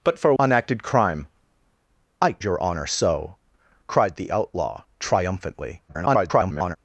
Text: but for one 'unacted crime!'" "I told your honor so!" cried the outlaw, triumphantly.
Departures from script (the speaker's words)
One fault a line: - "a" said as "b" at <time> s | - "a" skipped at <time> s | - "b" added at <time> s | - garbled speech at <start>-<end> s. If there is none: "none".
- "one" skipped at 0.3 s
- "told" skipped at 2.3 s
- garbled speech at 5.9-6.8 s